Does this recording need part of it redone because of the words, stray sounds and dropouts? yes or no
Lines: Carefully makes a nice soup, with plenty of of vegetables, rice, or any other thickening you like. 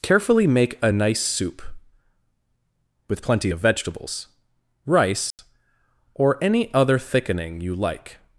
yes